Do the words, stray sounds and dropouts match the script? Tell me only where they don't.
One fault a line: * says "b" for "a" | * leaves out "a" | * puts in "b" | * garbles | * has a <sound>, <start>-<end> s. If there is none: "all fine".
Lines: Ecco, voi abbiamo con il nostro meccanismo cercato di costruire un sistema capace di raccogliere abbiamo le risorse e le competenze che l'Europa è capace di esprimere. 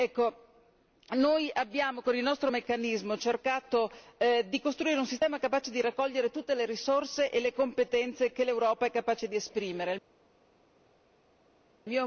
* says "noi" for "voi"
* says "tutte" for "abbiamo"